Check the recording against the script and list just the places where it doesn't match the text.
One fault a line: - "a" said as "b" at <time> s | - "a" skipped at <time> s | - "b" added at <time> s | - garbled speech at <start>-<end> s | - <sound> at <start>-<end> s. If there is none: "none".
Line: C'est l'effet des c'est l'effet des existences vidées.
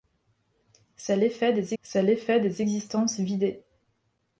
none